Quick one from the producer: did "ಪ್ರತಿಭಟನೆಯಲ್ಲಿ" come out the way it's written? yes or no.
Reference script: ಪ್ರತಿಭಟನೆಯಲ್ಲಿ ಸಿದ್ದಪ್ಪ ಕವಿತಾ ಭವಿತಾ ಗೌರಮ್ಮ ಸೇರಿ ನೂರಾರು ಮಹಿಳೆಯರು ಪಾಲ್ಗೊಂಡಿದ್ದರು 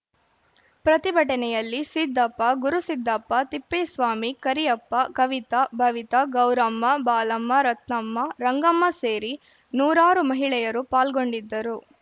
yes